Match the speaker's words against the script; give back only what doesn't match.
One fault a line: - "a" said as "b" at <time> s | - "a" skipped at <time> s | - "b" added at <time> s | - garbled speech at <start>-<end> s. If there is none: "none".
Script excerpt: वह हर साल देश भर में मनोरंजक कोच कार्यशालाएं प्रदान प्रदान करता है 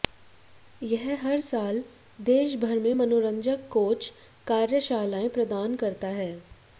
- "वह" said as "यह" at 0.8 s
- "प्रदान" skipped at 5.7 s